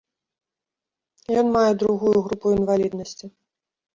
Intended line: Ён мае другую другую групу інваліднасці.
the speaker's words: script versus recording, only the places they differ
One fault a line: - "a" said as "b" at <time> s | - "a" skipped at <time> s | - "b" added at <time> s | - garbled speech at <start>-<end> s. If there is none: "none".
- "другую" skipped at 2.1 s